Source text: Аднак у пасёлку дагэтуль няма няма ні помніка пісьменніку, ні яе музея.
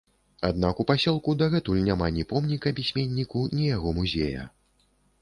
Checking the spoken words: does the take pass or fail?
fail